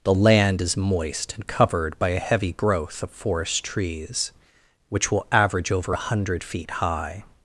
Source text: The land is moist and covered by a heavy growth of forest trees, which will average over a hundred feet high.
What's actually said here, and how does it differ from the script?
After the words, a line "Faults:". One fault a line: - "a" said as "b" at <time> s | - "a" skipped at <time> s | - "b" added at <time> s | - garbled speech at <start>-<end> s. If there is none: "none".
The land is moist and covered by a heavy growth of forest trees, which will average over a hundred feet high.
Faults:
none